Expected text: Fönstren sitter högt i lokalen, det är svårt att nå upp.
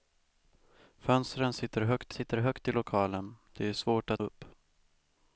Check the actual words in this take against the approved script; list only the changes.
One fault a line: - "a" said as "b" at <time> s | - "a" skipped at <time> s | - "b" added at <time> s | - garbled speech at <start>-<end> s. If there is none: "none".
- "sitter högt" added at 2.1 s
- "nå" skipped at 4.2 s